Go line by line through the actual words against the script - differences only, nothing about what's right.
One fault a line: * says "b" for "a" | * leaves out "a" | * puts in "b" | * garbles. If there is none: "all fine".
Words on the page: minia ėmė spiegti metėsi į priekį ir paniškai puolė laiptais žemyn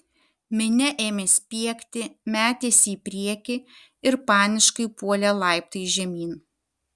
all fine